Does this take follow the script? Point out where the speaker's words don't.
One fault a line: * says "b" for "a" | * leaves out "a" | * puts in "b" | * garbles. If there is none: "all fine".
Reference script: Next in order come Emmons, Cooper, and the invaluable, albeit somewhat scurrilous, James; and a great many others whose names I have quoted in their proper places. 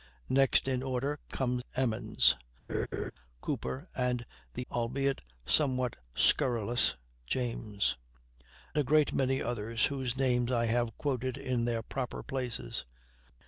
* leaves out "invaluable"
* leaves out "and"